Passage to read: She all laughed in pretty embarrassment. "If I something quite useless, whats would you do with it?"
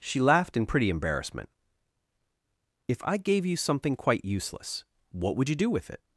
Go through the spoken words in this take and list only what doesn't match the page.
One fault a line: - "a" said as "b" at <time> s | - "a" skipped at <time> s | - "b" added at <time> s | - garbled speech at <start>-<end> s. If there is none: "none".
- "all" skipped at 0.2 s
- "gave you" added at 3.2 s
- "whats" said as "what" at 5.1 s